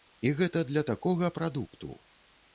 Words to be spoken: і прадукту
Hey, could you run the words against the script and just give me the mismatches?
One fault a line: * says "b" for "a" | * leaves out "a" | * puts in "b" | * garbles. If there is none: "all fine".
* puts in "гэта для такога"